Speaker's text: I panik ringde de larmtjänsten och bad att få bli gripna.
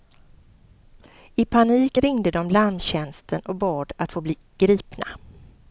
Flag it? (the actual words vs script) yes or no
no